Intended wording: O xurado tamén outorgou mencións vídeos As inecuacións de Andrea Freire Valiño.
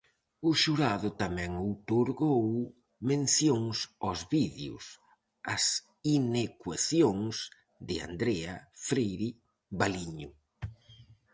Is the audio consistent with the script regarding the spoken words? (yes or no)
no